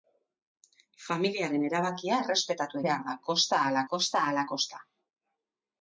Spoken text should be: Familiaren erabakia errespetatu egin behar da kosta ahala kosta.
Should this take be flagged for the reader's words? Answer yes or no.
yes